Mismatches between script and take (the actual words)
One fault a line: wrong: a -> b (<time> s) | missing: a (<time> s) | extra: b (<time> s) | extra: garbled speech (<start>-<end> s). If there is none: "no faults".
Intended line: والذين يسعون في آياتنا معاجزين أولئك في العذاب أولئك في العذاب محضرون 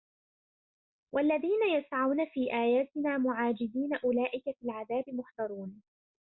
missing: أولئك في العذاب (5.0 s)